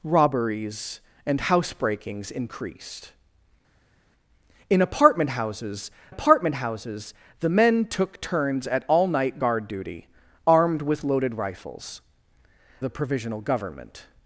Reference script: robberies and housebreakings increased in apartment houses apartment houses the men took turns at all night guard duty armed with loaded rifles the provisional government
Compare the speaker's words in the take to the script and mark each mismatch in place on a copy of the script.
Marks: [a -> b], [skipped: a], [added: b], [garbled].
robberies and housebreakings increased in apartment houses apartment houses the men took turns at all night guard duty armed with loaded rifles the provisional government